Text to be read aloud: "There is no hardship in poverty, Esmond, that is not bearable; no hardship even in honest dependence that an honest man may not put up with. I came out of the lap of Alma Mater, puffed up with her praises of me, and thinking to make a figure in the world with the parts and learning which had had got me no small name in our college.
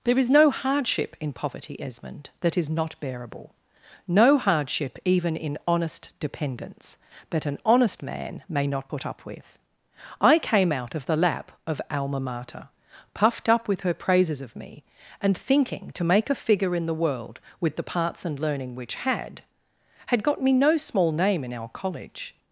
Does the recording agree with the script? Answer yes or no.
yes